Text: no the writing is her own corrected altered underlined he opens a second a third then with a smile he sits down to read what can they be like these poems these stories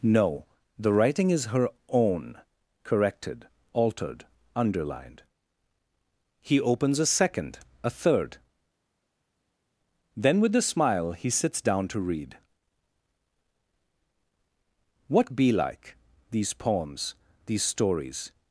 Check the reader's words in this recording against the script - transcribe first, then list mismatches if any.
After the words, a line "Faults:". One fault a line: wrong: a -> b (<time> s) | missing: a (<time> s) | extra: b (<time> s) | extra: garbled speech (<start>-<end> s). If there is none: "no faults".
no the writing is her own corrected altered underlined he opens a second a third then with a smile he sits down to read what be like these poems these stories
Faults:
missing: can they (15.3 s)